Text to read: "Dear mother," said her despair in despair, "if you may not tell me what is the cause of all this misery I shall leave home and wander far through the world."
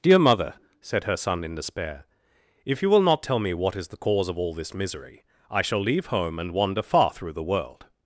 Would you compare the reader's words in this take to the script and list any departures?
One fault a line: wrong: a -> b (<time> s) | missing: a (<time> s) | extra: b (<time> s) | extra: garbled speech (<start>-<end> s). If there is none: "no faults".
wrong: despair -> son (1.1 s)
wrong: may -> will (2.9 s)